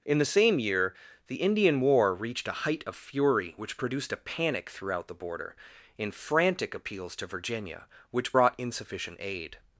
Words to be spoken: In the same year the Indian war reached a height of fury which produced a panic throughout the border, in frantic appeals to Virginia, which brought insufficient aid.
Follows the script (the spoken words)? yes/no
yes